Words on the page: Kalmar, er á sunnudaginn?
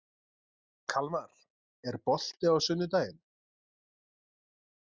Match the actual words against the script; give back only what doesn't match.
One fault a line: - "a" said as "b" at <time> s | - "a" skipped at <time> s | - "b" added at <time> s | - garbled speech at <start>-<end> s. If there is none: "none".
- "bolti" added at 2.1 s